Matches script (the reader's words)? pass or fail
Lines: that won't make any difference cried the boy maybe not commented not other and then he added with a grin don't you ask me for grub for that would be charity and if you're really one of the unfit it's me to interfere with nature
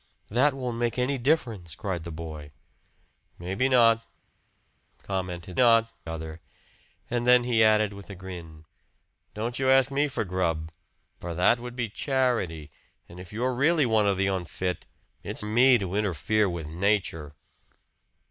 pass